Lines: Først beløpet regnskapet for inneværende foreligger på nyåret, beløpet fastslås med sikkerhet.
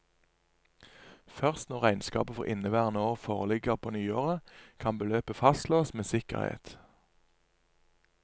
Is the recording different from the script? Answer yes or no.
yes